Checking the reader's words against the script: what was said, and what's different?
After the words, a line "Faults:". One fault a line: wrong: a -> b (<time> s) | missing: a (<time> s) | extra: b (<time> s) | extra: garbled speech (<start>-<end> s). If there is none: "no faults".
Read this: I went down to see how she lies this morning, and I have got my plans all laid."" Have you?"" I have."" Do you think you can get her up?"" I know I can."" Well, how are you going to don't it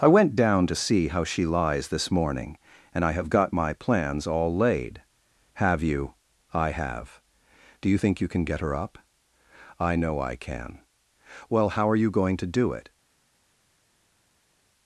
I went down to see how she lies this morning, and I have got my plans all laid."" Have you?"" I have."" Do you think you can get her up?"" I know I can."" Well, how are you going to do it
Faults:
wrong: don't -> do (12.5 s)